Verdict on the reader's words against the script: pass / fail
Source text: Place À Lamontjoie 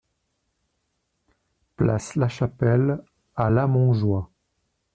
fail